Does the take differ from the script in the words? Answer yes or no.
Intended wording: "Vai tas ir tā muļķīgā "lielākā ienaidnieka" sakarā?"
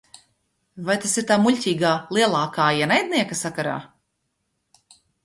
no